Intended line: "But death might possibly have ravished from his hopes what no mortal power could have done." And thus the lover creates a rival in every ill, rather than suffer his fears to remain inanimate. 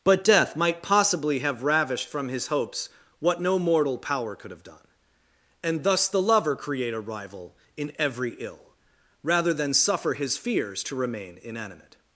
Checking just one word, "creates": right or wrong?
wrong